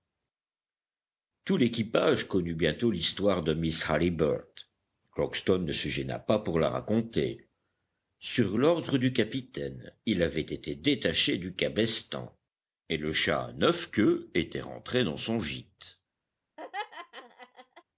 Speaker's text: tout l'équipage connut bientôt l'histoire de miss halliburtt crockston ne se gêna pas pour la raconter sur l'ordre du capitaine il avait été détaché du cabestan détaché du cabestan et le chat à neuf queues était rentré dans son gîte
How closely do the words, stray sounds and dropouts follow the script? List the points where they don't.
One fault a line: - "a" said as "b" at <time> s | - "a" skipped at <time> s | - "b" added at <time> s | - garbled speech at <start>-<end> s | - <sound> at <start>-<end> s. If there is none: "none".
- "détaché du cabestan" skipped at 12.4 s
- laugh at 16.6-17.8 s